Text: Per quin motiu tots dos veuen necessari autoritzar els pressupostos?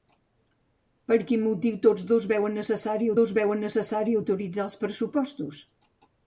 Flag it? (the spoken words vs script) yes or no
yes